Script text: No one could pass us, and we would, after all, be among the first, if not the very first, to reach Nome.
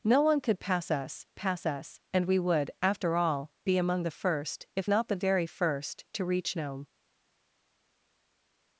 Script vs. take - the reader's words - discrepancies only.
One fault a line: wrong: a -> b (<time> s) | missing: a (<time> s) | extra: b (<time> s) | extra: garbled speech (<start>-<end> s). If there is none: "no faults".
extra: pass us (1.3 s)